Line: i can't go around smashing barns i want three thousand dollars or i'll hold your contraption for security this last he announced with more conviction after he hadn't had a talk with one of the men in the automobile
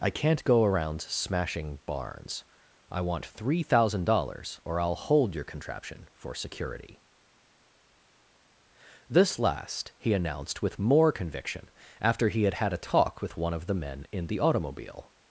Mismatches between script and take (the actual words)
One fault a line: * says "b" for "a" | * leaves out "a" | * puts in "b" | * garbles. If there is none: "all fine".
* says "had" for "hadn't"